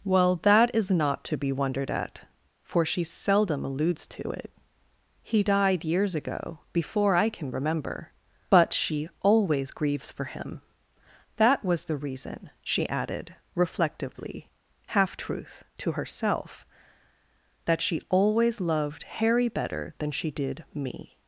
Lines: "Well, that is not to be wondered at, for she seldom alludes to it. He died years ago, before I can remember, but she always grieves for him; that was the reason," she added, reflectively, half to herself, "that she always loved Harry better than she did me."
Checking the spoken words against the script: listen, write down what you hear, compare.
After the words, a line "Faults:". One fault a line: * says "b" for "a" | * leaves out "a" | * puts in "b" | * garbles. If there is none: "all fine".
"Well, that is not to be wondered at, for she seldom alludes to it. He died years ago, before I can remember, but she always grieves for him; that was the reason," she added, reflectively, half truth to herself, "that she always loved Harry better than she did me."
Faults:
* puts in "truth"